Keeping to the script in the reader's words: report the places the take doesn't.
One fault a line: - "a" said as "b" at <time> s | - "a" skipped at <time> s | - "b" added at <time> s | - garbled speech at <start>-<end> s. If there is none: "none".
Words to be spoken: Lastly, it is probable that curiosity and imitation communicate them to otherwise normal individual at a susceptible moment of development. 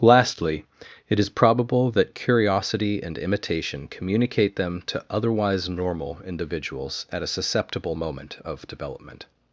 - "individual" said as "individuals" at 6.2 s